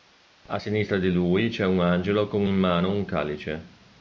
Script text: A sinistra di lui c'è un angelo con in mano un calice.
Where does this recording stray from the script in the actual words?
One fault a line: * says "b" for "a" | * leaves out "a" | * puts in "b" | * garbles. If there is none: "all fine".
all fine